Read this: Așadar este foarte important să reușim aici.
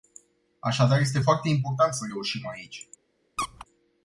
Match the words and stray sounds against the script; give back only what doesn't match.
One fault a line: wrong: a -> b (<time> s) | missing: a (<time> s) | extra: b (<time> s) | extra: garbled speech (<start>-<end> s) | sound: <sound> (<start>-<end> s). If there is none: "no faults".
sound: squeak (3.4-3.7 s)